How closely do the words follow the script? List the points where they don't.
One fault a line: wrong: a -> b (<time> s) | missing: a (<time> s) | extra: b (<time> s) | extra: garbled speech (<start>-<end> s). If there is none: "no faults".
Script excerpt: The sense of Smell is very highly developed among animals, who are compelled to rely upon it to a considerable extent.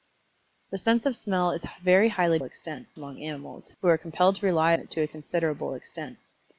wrong: developed -> extent (2.4 s)
missing: upon (4.7 s)